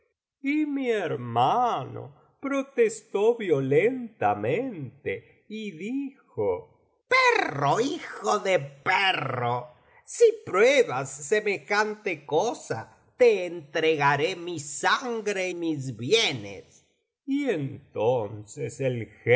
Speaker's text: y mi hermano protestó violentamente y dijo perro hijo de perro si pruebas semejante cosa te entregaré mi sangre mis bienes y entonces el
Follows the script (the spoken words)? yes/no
yes